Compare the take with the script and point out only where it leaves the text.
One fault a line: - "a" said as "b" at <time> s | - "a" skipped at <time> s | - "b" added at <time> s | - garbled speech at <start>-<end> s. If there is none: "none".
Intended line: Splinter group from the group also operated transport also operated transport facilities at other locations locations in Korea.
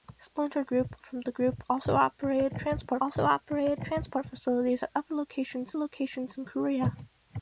none